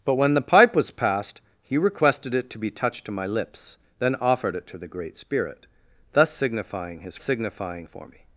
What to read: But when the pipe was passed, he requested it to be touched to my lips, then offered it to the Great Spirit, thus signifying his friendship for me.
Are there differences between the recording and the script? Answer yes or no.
yes